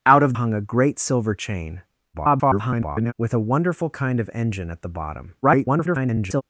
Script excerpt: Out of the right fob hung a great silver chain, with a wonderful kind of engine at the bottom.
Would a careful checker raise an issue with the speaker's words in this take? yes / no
yes